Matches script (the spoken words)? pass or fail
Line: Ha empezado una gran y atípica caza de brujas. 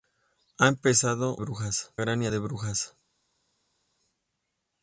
fail